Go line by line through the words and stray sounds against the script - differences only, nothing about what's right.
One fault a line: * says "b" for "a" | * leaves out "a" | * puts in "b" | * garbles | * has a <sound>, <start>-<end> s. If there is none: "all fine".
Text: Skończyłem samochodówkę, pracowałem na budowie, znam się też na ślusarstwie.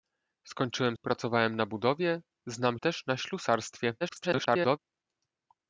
* leaves out "samochodówkę"
* leaves out "się"
* garbles